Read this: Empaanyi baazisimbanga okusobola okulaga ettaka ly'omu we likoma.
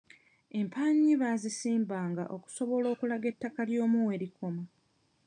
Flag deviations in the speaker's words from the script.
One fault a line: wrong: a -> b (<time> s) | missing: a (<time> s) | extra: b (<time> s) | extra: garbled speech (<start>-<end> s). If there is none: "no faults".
no faults